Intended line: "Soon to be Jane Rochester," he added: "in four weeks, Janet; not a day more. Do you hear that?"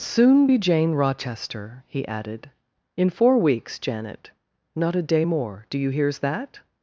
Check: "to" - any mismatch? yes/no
yes